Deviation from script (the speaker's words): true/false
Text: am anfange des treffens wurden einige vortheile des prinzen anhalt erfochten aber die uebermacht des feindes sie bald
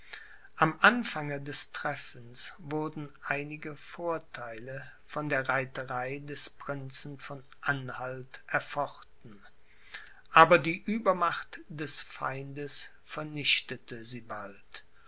true